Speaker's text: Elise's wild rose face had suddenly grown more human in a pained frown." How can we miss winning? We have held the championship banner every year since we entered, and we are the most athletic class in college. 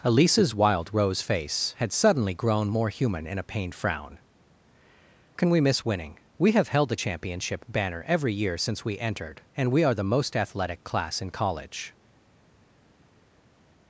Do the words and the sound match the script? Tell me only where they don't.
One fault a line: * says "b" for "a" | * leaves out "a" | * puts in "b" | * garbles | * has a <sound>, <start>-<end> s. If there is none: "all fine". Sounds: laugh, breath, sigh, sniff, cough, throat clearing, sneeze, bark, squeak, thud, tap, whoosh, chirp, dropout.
* leaves out "How"